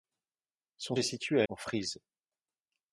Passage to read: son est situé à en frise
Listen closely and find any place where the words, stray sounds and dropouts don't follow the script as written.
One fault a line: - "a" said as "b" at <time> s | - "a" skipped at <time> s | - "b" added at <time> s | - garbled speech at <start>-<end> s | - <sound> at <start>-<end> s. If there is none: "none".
none